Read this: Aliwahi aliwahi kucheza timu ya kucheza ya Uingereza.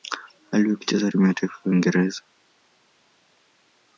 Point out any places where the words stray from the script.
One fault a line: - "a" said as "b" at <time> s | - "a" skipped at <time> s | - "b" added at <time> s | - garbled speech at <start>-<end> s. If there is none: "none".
- "aliwahi" skipped at 0.8 s
- "kucheza" said as "taifa" at 1.3 s